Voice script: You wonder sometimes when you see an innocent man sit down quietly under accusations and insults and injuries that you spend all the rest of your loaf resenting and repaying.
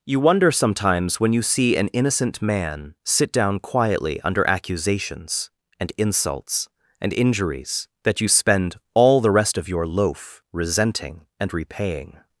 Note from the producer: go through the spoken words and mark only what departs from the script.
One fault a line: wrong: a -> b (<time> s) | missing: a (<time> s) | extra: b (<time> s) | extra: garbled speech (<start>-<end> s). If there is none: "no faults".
no faults